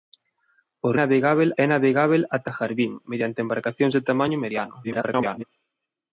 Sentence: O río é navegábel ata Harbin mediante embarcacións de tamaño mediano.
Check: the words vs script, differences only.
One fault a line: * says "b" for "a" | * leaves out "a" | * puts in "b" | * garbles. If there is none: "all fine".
* says "navegábel" for "río"
* garbles